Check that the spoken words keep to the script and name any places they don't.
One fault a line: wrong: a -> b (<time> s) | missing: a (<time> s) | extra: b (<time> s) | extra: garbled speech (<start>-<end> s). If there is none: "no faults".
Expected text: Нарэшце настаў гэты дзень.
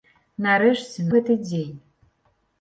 missing: настаў (1.1 s)